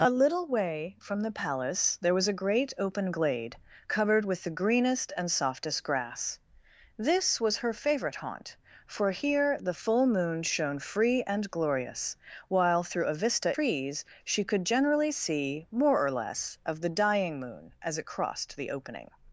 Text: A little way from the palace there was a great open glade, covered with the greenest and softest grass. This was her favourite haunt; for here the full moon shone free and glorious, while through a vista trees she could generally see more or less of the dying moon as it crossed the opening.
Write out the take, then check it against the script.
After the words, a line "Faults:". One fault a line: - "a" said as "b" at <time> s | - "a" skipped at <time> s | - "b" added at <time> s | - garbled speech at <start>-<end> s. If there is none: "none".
A little way from the palace there was a great open glade, covered with the greenest and softest grass. This was her favourite haunt; for here the full moon shone free and glorious, while through a vista trees she could generally see more or less of the dying moon as it crossed the opening.
Faults:
none